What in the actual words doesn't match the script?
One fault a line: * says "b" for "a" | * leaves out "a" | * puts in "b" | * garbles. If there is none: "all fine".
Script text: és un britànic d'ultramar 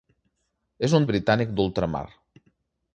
all fine